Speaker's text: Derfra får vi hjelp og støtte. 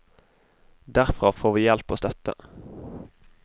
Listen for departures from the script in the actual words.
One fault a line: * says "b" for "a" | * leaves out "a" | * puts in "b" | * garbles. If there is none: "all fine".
all fine